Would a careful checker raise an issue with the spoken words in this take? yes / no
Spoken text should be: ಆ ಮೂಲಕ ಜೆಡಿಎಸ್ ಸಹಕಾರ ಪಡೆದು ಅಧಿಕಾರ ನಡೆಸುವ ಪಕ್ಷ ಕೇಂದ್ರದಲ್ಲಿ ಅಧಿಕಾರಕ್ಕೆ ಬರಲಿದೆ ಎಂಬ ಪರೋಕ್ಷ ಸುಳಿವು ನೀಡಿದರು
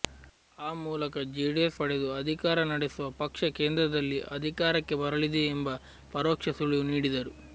yes